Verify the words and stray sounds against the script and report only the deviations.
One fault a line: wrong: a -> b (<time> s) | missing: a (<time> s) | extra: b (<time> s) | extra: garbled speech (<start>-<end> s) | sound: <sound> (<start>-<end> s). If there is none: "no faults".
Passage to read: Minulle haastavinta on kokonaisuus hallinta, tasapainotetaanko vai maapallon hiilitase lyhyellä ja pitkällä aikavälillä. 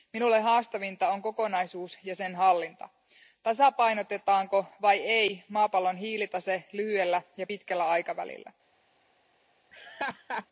extra: ja sen (2.0 s)
extra: ei (5.0 s)
sound: laugh (9.7-10.5 s)